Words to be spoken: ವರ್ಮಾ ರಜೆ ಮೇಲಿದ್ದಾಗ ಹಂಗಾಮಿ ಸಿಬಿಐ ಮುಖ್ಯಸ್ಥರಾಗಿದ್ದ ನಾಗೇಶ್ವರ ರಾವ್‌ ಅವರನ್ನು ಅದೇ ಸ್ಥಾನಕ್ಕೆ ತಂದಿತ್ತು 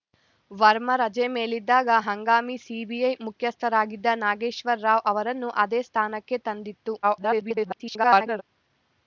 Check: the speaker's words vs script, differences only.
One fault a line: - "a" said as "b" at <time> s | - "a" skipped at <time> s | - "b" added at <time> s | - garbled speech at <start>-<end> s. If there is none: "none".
- garbled speech at 7.0-8.4 s